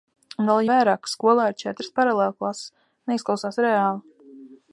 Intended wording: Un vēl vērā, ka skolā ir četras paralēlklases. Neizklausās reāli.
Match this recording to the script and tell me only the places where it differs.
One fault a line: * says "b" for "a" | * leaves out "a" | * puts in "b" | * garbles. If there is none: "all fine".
all fine